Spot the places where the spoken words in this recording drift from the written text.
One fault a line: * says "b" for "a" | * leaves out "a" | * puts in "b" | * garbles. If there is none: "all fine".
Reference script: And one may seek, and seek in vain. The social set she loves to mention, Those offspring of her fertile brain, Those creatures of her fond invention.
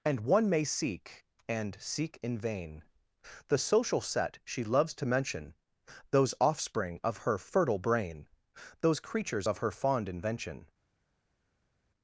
all fine